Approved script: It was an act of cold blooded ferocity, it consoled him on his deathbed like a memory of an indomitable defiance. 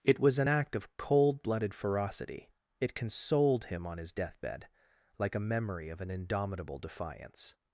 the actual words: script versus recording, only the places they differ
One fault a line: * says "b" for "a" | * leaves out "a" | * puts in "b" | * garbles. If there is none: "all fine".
all fine